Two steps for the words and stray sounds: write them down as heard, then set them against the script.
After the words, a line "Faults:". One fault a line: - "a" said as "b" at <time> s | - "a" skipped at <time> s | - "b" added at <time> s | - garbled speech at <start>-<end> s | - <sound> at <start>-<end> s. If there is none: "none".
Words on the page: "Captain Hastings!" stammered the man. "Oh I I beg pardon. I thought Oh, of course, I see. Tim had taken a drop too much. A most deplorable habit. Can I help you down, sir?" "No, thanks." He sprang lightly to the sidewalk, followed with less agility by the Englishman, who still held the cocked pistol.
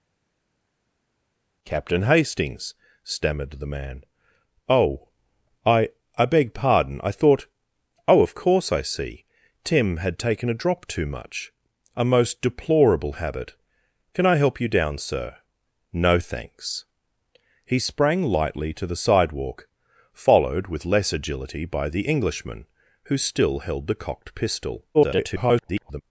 "Captain Hastings!" stammered the man. "Oh I I beg pardon. I thought Oh, of course, I see. Tim had taken a drop too much. A most deplorable habit. Can I help you down, sir?" "No, thanks." He sprang lightly to the sidewalk, followed with less agility by the Englishman, who still held the cocked pistol. [garbled]
Faults:
- garbled speech at 24.9-26.0 s